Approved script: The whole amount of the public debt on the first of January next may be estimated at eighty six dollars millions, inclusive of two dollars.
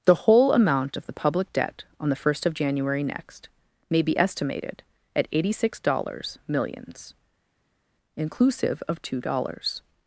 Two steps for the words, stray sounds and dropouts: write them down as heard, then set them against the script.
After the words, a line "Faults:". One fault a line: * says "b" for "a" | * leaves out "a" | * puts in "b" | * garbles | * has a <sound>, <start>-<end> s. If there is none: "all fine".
The whole amount of the public debt on the first of January next may be estimated at eighty six dollars millions, inclusive of two dollars.
Faults:
all fine